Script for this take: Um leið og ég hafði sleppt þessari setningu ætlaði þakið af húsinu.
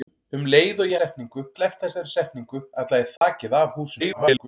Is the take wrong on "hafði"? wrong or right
wrong